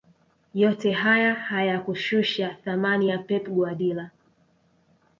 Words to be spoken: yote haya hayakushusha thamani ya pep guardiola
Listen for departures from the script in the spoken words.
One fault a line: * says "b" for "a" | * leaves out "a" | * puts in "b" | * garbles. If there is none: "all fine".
all fine